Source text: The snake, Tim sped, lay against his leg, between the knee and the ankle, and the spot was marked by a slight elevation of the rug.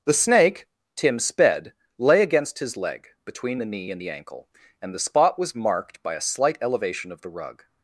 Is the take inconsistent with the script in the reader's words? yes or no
no